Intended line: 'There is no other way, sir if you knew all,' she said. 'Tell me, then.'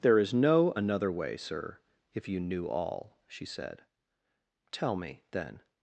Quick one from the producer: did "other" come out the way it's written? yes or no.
no